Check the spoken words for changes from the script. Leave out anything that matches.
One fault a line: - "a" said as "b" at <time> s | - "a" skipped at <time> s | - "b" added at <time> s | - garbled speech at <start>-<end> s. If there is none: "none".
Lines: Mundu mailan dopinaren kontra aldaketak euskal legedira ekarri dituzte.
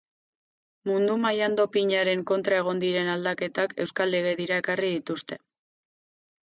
- "egon diren" added at 2.6 s